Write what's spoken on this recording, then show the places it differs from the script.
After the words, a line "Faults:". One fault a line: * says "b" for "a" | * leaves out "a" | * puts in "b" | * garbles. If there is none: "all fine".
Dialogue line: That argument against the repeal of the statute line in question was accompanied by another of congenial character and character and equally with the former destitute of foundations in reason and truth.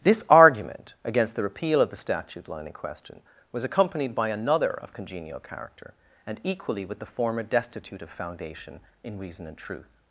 This argument against the repeal of the statute line in question was accompanied by another of congenial character and equally with the former destitute of foundation in reason and truth.
Faults:
* says "This" for "That"
* leaves out "character and"
* says "foundation" for "foundations"